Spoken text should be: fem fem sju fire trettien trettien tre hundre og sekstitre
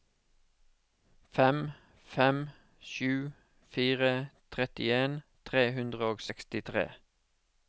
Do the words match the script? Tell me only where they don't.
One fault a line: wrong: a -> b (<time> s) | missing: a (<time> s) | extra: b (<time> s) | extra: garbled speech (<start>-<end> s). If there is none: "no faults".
missing: trettien (5.2 s)